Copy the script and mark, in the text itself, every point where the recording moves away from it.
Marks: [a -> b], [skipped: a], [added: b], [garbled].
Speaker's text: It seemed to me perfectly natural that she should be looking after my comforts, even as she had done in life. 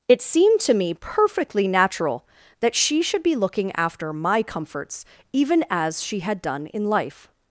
It seemed to me perfectly natural that she should be looking after my comforts, even as she had done in life.